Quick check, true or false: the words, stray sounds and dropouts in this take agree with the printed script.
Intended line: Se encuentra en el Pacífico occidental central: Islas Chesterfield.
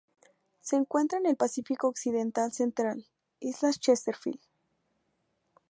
true